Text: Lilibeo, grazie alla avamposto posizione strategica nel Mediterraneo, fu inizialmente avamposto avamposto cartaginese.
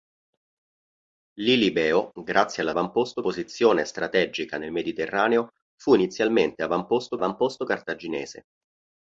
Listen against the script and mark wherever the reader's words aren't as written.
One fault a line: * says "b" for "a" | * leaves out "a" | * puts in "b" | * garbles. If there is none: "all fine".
all fine